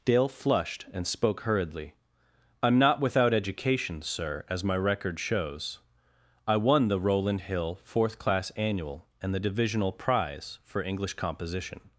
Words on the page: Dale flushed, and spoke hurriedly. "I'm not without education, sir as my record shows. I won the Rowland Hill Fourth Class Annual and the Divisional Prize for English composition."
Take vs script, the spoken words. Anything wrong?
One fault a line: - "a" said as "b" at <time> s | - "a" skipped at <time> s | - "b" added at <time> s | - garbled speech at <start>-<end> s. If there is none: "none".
none